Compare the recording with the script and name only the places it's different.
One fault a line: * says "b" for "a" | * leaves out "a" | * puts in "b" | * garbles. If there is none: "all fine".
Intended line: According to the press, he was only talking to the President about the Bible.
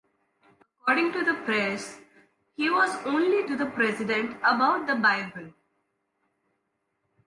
* leaves out "talking"